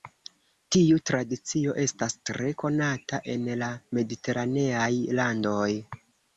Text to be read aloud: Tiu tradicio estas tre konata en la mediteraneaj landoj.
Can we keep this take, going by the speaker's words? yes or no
yes